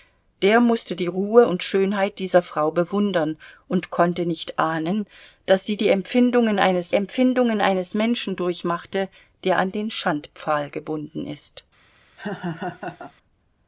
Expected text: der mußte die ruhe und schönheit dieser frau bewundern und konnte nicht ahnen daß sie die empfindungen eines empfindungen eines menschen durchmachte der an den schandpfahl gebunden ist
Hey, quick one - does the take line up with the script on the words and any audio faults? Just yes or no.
no